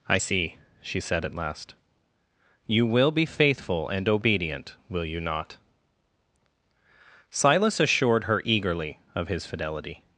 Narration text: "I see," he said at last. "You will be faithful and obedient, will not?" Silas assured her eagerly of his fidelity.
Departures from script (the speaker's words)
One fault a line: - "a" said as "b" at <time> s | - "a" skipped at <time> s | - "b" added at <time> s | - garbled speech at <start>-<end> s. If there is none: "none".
- "he" said as "she" at 0.8 s
- "you" added at 5.0 s